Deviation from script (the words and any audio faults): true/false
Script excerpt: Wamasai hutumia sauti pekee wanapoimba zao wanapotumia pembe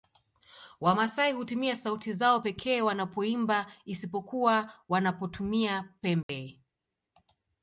true